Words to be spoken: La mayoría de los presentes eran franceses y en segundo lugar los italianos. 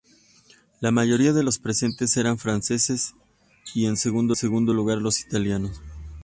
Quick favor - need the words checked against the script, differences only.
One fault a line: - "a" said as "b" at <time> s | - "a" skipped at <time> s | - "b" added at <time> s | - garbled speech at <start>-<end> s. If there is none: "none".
- "segundo" added at 4.3 s